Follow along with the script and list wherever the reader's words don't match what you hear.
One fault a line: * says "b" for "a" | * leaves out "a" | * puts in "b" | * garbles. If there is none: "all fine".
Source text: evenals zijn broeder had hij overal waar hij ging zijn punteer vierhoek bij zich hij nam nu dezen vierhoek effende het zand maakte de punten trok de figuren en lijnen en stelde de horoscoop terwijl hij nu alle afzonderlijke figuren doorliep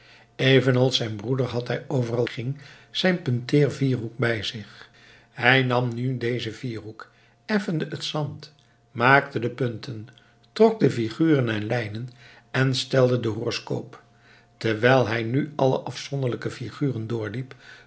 * leaves out "waar hij"